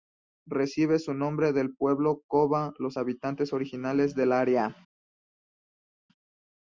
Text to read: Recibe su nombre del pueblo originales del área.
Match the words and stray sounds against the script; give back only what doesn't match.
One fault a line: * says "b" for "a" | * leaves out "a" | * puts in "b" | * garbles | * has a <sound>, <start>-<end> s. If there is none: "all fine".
* puts in "koba los habitantes"